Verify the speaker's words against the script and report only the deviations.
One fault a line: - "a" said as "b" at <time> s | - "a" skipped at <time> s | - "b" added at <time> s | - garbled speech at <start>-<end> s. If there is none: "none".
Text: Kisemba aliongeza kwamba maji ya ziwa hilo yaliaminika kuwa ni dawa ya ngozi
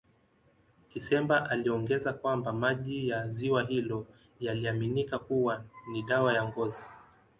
none